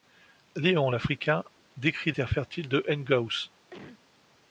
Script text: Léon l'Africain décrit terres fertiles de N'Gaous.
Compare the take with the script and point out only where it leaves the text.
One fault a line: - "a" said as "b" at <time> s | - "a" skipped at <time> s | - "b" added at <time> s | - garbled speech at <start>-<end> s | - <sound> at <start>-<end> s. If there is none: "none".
- cough at 3.7-4.0 s